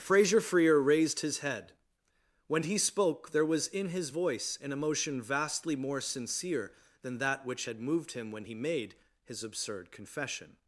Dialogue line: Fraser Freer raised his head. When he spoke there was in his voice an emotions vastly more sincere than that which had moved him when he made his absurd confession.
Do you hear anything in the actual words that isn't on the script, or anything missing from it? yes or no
yes